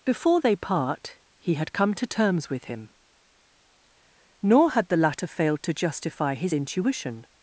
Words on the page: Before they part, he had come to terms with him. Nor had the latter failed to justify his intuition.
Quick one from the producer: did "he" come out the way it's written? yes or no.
yes